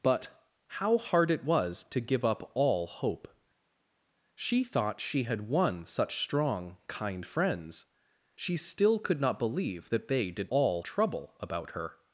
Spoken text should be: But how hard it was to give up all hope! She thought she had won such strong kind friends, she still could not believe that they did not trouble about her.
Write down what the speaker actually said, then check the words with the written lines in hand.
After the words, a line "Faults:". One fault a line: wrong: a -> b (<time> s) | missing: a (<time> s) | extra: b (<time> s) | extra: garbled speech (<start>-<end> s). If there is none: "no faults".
But how hard it was to give up all hope! She thought she had won such strong kind friends, she still could not believe that they did all trouble about her.
Faults:
wrong: not -> all (10.5 s)